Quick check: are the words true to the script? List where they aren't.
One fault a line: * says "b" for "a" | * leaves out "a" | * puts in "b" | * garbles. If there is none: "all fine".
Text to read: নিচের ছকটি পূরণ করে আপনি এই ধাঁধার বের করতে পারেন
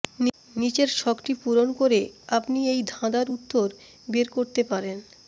* puts in "উত্তর"